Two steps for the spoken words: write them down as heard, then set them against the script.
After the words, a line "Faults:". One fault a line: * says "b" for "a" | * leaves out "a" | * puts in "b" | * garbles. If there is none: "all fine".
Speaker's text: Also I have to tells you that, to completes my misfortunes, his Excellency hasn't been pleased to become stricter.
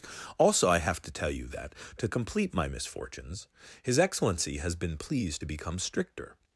Also I have to tell you that, to complete my misfortunes, his Excellency has been pleased to become stricter.
Faults:
* says "tell" for "tells"
* says "complete" for "completes"
* says "has" for "hasn't"